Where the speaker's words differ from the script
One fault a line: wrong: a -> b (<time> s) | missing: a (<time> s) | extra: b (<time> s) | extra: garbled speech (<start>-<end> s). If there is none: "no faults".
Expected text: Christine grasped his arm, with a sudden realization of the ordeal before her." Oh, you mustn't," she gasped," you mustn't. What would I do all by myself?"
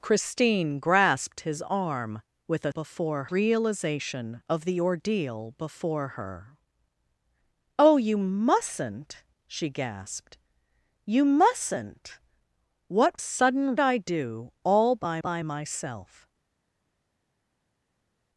wrong: sudden -> before (2.7 s)
wrong: would -> sudden (13.2 s)
extra: by (15.2 s)